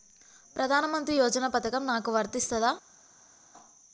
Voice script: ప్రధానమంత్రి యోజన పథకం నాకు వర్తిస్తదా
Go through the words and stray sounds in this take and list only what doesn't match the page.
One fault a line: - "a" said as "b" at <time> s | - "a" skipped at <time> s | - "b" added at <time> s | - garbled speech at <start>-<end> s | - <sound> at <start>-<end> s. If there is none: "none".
none